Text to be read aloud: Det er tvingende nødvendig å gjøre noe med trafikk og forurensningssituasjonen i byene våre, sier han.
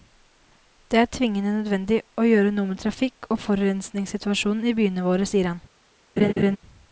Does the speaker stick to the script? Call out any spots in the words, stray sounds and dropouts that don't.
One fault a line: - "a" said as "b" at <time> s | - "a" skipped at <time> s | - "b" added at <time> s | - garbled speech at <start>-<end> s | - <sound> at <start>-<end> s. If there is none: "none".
- laugh at 6.2-6.6 s